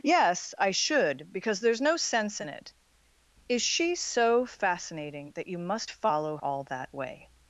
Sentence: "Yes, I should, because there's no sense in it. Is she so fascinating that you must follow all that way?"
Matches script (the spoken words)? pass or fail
pass